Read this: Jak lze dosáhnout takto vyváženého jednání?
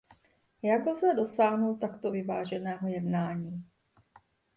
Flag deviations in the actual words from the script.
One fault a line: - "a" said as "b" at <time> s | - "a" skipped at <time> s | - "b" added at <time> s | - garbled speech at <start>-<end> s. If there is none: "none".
none